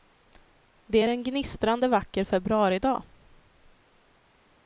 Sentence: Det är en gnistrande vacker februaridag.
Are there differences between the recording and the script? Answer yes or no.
no